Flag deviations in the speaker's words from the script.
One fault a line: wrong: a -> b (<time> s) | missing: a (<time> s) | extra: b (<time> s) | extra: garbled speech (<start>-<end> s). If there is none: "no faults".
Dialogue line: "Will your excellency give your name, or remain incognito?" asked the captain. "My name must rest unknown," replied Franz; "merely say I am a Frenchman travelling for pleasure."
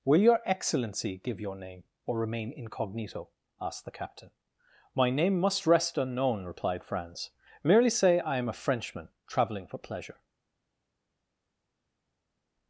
no faults